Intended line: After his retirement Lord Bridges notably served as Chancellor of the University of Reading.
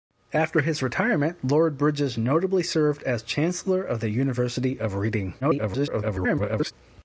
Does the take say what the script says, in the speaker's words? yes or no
no